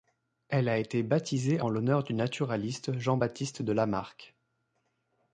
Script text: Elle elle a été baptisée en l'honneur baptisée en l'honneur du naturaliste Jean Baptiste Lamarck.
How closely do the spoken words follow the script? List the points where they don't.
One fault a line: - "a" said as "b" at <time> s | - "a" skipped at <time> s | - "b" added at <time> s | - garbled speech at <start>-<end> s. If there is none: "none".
- "elle" skipped at 0.7 s
- "baptisée en l'honneur" skipped at 2.0 s
- "de" added at 3.6 s